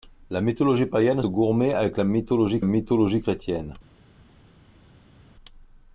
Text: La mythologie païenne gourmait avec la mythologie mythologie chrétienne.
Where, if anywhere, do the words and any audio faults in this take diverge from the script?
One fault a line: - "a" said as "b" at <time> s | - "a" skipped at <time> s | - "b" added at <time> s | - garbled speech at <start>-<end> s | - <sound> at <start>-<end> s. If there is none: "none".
none